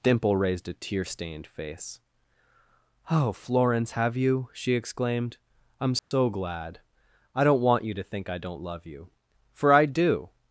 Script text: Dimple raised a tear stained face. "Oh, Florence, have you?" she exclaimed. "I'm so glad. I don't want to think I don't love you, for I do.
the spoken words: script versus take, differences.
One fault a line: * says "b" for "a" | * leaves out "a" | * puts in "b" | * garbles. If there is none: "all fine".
* puts in "you"